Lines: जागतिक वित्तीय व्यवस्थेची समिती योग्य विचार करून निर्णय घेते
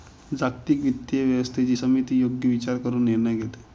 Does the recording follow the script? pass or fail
pass